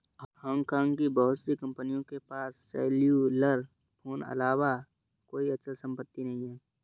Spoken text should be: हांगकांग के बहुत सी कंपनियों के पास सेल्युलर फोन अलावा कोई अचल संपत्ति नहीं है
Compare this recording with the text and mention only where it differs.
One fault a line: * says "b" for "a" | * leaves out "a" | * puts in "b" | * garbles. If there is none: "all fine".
* says "की" for "के"